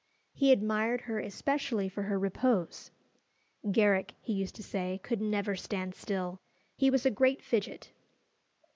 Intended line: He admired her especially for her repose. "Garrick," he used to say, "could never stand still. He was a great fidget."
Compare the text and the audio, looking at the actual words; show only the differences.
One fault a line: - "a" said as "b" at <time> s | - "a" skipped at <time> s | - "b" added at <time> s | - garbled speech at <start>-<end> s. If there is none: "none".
none